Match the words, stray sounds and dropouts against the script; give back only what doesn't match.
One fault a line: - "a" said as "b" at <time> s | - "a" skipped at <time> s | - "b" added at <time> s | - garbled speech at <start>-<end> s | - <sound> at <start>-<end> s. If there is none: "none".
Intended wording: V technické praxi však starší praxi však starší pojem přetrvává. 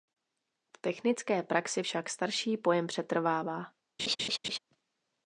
- "praxi však starší" skipped at 2.6 s
- laugh at 4.0-4.6 s